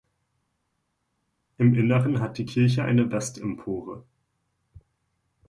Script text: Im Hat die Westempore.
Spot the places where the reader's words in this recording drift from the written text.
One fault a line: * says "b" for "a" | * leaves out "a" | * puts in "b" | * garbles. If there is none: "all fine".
* puts in "Inneren"
* puts in "Kirche eine"